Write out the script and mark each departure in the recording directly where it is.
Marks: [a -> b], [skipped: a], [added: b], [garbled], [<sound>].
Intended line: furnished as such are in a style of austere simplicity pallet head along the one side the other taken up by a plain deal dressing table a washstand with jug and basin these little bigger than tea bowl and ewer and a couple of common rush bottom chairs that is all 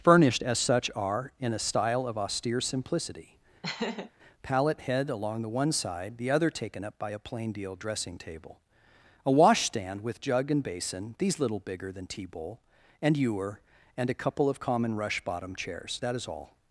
furnished as such are in a style of austere simplicity [laugh] pallet head along the one side the other taken up by a plain deal dressing table a washstand with jug and basin these little bigger than tea bowl and ewer and a couple of common rush bottom chairs that is all